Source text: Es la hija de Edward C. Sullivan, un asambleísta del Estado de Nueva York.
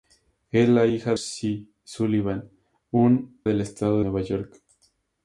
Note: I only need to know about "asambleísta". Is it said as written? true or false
false